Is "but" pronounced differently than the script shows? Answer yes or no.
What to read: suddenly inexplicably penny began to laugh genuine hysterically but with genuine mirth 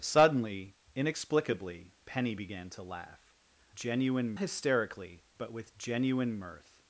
no